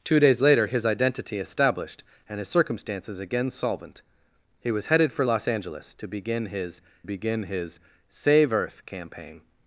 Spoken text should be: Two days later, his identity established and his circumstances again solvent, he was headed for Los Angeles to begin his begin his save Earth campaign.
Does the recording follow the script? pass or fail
pass